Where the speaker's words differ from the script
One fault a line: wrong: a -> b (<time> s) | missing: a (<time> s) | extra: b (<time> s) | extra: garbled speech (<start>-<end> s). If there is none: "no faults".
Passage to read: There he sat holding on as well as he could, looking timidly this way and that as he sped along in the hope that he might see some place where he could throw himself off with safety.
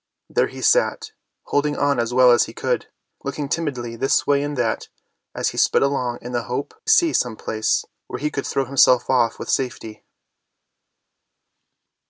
missing: that he might (6.7 s)